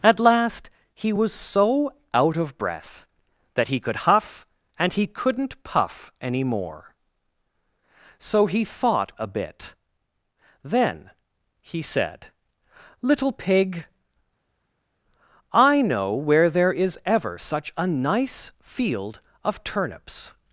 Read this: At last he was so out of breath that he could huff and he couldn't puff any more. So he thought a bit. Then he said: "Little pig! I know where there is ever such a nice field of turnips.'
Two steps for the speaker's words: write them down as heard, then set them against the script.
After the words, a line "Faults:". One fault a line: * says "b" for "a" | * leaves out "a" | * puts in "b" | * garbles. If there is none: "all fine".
At last he was so out of breath that he could huff and he couldn't puff any more. So he thought a bit. Then he said: "Little pig! I know where there is ever such a nice field of turnips.'
Faults:
all fine